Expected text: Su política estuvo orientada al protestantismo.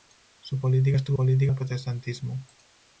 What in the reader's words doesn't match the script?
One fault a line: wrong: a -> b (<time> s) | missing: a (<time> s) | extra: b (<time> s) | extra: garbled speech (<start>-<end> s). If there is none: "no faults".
wrong: orientada -> política (1.1 s)